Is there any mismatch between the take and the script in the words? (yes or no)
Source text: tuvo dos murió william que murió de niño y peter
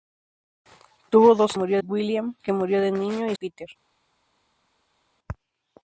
no